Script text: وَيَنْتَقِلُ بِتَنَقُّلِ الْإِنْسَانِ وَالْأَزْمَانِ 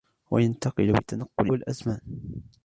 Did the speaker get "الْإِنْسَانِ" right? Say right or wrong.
wrong